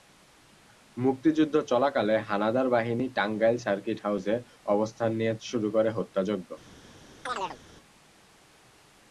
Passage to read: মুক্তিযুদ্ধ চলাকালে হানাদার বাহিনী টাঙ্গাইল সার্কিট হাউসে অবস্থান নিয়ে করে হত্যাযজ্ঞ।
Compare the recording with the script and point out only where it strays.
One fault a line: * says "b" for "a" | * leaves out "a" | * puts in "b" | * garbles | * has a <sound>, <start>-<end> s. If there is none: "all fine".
* puts in "শুরু"
* has a chirp, 7.3-7.6 s